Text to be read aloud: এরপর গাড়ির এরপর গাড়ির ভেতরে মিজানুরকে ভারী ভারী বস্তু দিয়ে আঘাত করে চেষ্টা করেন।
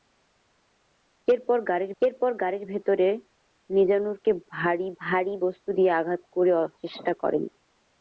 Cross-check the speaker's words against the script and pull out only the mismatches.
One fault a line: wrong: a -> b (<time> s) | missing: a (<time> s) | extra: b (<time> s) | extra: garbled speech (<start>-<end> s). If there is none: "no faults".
no faults